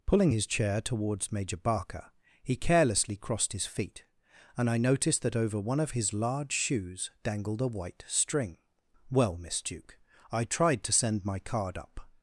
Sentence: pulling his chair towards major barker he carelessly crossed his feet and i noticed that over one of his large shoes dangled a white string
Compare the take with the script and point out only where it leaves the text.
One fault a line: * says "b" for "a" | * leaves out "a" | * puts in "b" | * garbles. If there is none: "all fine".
* puts in "well miss duke i tried to send my card up"